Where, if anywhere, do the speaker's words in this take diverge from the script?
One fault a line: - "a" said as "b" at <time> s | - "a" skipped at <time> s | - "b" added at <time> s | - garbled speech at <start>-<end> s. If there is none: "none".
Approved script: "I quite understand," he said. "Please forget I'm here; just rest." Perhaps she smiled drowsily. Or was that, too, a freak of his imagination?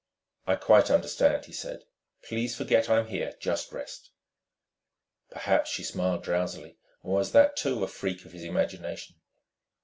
none